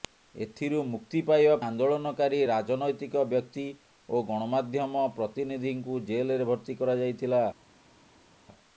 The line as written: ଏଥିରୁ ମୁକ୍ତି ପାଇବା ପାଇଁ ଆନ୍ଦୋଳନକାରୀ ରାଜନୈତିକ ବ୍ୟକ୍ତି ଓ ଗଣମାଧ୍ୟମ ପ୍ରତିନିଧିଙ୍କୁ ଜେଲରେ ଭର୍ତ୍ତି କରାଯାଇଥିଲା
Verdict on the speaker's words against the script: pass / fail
fail